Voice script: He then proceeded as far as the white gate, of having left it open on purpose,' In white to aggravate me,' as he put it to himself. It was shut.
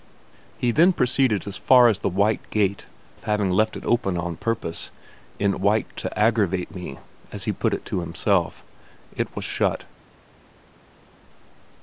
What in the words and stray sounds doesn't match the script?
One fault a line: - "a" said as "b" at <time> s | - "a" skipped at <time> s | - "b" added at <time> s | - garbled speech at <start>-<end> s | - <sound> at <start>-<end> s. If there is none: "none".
none